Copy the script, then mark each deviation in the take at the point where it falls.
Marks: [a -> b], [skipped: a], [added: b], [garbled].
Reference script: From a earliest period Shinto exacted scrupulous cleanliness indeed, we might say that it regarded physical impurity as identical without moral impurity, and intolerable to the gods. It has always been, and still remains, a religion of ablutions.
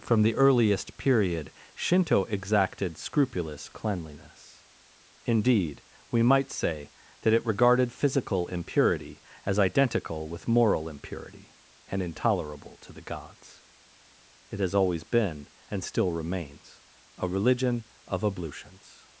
From [a -> the] earliest period Shinto exacted scrupulous cleanliness indeed, we might say that it regarded physical impurity as identical [without -> with] moral impurity, and intolerable to the gods. It has always been, and still remains, a religion of ablutions.